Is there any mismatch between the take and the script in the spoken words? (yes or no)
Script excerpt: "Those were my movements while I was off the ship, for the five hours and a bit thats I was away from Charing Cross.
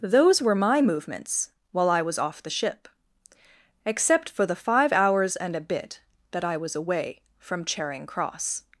yes